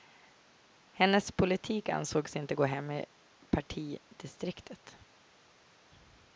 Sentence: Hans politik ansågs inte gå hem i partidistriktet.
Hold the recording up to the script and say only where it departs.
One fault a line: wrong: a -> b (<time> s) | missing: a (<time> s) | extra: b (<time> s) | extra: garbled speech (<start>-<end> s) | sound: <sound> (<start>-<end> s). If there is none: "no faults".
wrong: Hans -> Hennes (0.9 s)